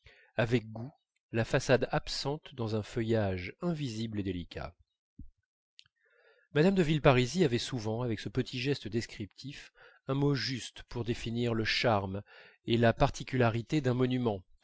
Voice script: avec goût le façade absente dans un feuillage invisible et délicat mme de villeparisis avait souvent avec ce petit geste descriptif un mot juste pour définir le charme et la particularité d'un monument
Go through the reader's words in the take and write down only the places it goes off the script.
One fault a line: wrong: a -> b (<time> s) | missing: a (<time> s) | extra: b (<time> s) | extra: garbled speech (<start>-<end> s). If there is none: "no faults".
wrong: le -> la (1.3 s)